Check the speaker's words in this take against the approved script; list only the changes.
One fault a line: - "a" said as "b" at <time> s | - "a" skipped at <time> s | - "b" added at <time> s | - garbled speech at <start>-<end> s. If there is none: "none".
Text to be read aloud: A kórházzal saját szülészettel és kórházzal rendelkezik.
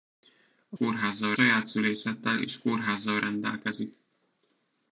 none